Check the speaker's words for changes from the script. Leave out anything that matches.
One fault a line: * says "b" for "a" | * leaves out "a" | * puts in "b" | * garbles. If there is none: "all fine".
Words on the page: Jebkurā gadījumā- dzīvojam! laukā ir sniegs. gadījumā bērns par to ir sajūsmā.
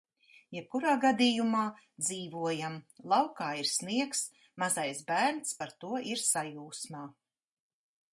* says "mazais" for "gadījumā"